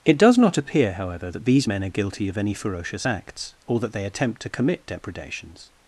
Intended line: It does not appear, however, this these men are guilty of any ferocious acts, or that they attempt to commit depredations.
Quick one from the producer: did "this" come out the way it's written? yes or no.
no